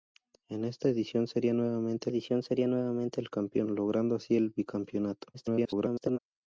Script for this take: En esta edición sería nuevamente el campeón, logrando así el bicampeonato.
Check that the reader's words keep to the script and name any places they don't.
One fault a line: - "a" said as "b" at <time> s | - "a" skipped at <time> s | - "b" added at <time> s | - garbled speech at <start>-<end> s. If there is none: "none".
- "edición sería nuevamente" added at 2.1 s
- garbled speech at 5.3-6.2 s